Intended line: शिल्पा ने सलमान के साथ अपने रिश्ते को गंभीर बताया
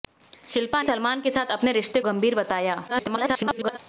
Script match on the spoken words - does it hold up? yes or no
no